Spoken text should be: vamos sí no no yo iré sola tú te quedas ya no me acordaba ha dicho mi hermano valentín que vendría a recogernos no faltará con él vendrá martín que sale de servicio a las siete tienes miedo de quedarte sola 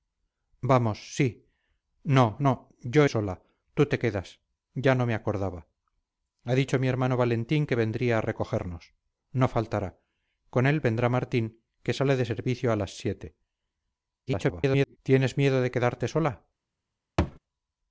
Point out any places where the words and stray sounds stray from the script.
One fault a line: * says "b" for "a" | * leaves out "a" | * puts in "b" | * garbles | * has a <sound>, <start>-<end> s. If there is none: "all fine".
* leaves out "iré"
* garbles
* has a thud, 17.2-17.4 s